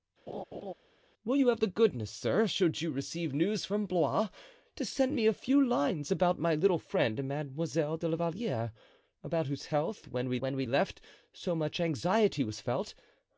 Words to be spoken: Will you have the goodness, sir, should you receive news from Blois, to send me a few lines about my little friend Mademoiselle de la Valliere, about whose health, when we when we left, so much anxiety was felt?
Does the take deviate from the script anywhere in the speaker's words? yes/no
no